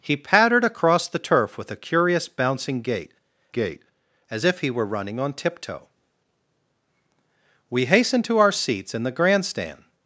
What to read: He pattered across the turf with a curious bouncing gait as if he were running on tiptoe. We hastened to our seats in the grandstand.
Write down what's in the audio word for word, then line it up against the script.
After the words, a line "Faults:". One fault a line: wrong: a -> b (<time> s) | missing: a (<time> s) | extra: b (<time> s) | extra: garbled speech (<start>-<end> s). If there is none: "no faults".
He pattered across the turf with a curious bouncing gait gait as if he were running on tiptoe. We hastened to our seats in the grandstand.
Faults:
extra: gait (3.5 s)